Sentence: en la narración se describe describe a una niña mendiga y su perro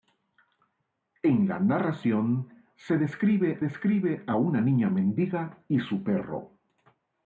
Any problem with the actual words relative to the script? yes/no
no